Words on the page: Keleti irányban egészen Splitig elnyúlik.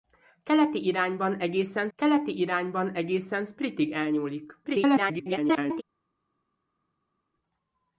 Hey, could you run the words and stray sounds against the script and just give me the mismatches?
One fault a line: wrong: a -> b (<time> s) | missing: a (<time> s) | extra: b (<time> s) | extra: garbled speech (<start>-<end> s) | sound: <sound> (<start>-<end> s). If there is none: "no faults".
extra: keleti irányban egészen (2.0 s)
extra: garbled speech (4.6-5.8 s)